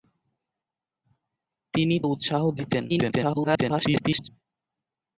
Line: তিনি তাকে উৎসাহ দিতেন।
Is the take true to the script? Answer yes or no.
no